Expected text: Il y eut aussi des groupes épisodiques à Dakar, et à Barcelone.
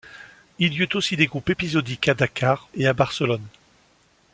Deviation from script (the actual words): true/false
false